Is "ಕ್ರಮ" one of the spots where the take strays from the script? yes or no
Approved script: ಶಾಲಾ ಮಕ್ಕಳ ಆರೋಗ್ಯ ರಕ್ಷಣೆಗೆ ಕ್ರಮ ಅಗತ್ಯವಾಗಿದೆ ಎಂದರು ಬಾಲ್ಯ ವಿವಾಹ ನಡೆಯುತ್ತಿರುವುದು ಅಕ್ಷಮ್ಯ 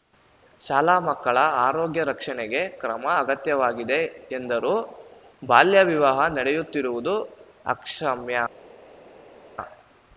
no